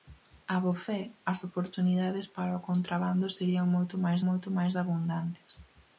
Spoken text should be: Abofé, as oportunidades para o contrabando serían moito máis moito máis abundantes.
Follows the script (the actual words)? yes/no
yes